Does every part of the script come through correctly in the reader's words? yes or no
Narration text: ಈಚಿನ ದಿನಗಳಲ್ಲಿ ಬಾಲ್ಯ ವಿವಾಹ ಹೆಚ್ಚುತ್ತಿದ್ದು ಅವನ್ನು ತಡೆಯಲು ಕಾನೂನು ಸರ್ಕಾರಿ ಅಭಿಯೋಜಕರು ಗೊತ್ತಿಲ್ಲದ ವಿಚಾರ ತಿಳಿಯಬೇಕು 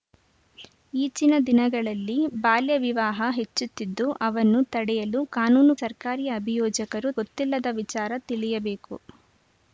yes